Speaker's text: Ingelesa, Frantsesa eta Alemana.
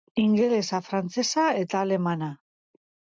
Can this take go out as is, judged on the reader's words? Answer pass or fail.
pass